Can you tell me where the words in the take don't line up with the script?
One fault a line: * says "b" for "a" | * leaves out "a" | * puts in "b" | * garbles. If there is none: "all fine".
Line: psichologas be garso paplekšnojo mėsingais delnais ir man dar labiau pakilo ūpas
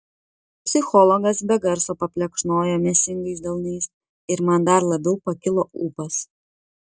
all fine